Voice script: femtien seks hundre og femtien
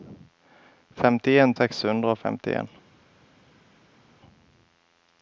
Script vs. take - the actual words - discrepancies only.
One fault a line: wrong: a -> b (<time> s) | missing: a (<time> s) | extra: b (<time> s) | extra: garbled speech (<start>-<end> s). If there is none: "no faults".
no faults